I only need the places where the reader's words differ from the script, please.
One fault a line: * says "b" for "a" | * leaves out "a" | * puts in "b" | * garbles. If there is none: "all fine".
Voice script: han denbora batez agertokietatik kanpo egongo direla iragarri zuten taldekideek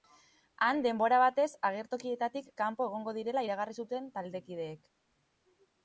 all fine